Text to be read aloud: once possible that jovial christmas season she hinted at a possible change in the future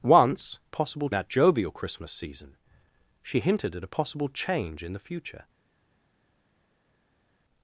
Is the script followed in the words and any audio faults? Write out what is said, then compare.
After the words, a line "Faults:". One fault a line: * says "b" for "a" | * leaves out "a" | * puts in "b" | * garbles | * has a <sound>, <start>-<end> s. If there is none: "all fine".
once possible that jovial christmas season she hinted at a possible change in the future
Faults:
all fine